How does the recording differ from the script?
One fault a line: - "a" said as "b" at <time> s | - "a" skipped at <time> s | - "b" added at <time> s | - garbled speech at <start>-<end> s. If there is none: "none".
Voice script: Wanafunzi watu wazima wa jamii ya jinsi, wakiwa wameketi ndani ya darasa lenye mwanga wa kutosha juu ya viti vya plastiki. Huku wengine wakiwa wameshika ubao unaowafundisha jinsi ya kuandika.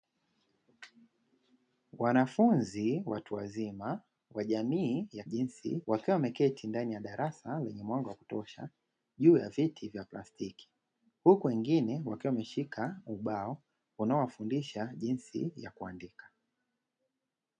none